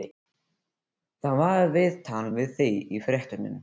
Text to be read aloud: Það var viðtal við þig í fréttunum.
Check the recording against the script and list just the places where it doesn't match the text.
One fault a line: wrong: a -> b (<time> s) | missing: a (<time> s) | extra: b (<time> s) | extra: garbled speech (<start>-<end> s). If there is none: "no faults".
no faults